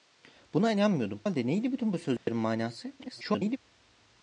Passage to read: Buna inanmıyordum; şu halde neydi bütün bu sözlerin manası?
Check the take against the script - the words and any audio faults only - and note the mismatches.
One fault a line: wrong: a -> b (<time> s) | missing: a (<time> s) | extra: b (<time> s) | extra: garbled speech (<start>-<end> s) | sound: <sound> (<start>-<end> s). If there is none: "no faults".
missing: şu (1.2 s)
sound: dropout (2.2-2.3 s)
extra: garbled speech (3.0-3.6 s)